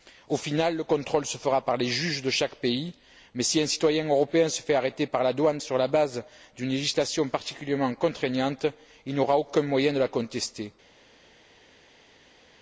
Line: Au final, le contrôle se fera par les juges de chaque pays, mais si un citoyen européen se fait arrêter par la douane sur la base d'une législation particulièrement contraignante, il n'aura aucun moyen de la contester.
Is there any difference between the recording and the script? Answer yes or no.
no